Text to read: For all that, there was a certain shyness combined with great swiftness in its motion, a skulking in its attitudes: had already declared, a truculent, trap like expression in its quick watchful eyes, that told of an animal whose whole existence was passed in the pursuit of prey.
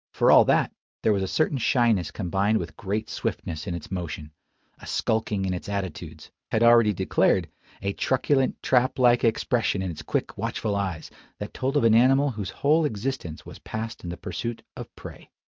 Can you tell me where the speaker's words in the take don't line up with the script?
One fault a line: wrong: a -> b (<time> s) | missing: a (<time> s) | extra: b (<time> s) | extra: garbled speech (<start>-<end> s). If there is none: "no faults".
no faults